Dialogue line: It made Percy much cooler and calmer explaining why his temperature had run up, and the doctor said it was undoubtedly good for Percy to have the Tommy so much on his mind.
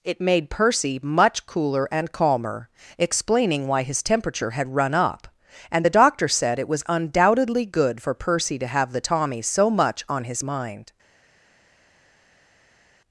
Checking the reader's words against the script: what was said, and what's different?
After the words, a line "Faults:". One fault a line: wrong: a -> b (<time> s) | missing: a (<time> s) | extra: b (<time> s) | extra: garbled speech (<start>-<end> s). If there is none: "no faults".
It made Percy much cooler and calmer explaining why his temperature had run up, and the doctor said it was undoubtedly good for Percy to have the Tommy so much on his mind.
Faults:
no faults